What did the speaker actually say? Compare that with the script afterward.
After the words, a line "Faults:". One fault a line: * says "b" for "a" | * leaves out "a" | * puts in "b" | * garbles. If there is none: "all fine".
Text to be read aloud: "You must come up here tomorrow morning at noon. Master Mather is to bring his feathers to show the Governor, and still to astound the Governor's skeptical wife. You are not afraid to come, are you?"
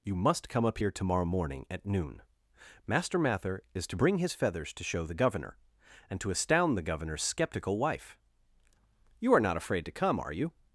"You must come up here tomorrow morning at noon. Master Mather is to bring his feathers to show the Governor, and to astound the Governor's skeptical wife. You are not afraid to come, are you?"
Faults:
* leaves out "still"